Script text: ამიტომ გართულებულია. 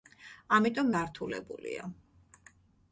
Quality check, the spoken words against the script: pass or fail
pass